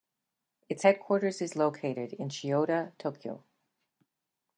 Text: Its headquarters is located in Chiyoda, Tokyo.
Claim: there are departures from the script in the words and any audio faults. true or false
false